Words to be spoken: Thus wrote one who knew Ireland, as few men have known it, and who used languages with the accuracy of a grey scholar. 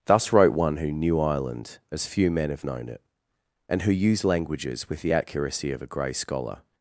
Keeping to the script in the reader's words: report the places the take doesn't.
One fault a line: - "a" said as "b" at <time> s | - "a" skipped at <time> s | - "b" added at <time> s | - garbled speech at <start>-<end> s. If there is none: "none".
none